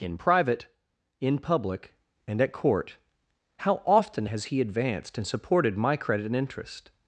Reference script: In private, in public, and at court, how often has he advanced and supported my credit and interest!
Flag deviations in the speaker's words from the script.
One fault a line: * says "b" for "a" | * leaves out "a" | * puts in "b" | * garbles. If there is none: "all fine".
all fine